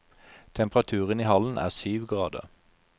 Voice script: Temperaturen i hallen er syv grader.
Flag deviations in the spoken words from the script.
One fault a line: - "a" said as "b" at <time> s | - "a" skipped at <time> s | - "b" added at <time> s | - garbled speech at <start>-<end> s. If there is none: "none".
none